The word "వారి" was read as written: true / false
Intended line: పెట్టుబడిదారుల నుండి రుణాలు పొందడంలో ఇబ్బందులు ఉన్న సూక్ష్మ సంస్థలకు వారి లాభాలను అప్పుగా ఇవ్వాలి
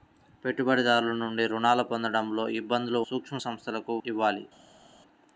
false